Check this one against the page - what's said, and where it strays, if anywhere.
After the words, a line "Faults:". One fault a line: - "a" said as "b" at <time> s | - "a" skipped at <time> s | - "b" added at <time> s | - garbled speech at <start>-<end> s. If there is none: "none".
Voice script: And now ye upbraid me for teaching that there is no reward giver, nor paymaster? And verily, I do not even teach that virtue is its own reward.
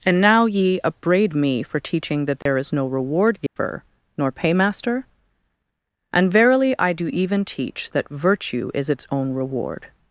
And now ye upbraid me for teaching that there is no reward giver, nor paymaster? And verily, I do even teach that virtue is its own reward.
Faults:
- "not" skipped at 7.1 s